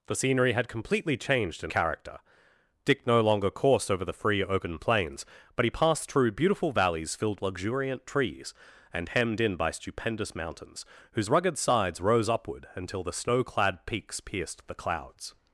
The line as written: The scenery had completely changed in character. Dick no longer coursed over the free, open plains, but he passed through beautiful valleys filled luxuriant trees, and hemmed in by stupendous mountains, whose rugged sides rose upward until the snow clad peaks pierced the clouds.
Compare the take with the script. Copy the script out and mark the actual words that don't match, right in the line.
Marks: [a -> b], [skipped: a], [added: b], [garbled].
The scenery had completely changed in character. Dick no longer coursed over the free, open plains, but he passed through beautiful valleys filled luxuriant trees, and hemmed in by stupendous mountains, whose rugged sides rose upward until the snow clad peaks pierced the clouds.